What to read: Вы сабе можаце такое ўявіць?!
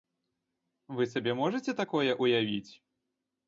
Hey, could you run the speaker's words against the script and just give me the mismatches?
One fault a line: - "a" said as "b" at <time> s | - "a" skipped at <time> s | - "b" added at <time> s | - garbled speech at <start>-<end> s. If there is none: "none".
none